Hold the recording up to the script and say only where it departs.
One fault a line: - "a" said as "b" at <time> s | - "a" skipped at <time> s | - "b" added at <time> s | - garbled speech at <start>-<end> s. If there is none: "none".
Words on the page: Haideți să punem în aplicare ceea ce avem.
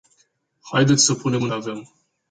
- "aplicare ceea ce" skipped at 1.5 s